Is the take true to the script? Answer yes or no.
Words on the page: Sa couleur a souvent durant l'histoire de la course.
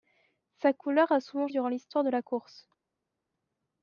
yes